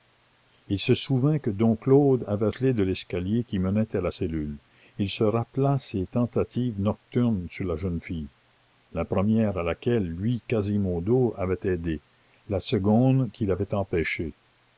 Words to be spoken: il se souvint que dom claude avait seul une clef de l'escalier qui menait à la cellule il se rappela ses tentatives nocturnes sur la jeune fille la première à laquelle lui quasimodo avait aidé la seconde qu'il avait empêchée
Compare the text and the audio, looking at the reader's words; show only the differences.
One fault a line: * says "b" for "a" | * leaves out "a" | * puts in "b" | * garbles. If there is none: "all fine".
* leaves out "seul une"